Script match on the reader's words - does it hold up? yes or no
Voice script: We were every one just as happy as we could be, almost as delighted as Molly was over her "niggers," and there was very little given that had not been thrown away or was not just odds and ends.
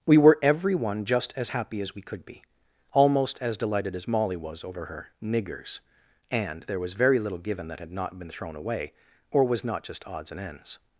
yes